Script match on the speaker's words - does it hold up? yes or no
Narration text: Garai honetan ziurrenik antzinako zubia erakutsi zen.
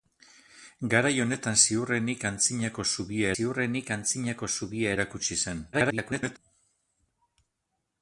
no